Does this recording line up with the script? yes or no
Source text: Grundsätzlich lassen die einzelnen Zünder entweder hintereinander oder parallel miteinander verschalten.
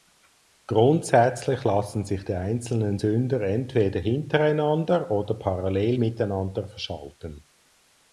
no